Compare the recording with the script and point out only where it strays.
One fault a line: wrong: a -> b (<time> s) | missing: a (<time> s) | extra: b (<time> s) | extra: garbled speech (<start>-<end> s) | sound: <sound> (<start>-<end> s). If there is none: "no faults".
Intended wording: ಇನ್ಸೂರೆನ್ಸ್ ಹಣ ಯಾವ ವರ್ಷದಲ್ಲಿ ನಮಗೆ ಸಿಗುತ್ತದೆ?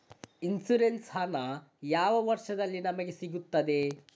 no faults